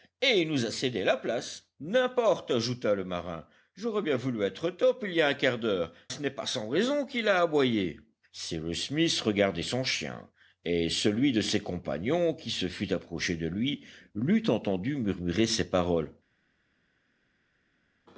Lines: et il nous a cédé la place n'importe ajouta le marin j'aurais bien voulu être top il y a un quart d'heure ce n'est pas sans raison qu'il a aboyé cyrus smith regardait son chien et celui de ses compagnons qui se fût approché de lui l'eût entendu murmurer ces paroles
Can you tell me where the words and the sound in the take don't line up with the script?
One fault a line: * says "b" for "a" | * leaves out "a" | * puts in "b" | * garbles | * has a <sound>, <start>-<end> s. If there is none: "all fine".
all fine